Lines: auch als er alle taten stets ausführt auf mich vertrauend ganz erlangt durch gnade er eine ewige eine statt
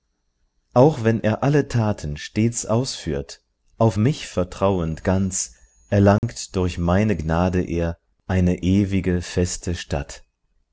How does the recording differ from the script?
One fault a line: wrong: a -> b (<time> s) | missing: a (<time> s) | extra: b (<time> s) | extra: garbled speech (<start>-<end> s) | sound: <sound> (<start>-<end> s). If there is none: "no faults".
wrong: als -> wenn (1.0 s)
sound: dropout (6.2-6.2 s)
extra: meine (6.8 s)
wrong: eine -> feste (9.2 s)